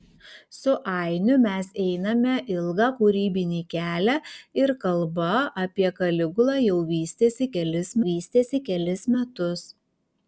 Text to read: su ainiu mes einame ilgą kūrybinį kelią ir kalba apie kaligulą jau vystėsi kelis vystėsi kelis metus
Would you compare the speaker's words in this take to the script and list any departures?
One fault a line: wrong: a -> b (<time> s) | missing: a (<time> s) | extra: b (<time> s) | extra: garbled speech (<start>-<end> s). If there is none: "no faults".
no faults